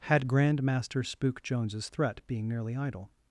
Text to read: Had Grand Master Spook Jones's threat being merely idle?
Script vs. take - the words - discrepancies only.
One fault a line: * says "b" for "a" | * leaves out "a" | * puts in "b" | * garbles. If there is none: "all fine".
all fine